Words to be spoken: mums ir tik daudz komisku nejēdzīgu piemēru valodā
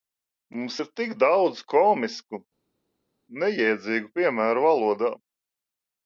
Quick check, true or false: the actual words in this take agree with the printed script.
true